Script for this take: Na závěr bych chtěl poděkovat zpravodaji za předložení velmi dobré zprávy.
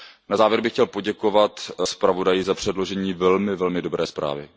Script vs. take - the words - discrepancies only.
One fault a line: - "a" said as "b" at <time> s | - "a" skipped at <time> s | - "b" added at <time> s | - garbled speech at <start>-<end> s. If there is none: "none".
none